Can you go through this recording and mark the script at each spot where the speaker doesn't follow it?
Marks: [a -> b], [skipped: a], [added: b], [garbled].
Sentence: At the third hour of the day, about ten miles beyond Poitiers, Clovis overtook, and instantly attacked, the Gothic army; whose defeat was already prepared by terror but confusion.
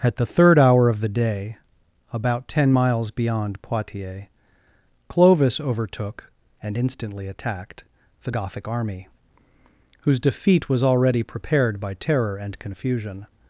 At the third hour of the day, about ten miles beyond Poitiers, Clovis overtook, and instantly attacked, the Gothic army; whose defeat was already prepared by terror [but -> and] confusion.